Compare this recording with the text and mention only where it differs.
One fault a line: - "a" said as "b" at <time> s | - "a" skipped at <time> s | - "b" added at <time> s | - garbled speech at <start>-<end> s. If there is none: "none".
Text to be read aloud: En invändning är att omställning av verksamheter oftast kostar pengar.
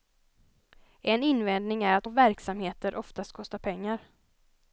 - "omställning" skipped at 2.1 s